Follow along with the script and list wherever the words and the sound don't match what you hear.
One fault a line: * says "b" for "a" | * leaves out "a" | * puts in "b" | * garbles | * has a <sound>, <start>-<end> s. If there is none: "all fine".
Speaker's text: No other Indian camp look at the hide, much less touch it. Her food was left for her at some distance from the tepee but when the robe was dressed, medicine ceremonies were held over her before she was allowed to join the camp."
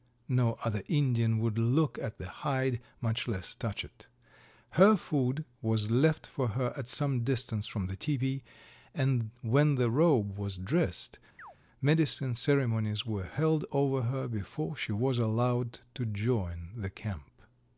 * says "would" for "camp"
* says "and" for "but"
* has a chirp, 11.4-11.6 s